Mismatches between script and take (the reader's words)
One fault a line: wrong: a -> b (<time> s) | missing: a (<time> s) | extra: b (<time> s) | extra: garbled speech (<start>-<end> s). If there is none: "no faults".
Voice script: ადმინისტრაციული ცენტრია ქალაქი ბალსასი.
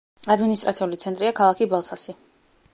no faults